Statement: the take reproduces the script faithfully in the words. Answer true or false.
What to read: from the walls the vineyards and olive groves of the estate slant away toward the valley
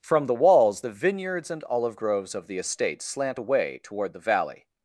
true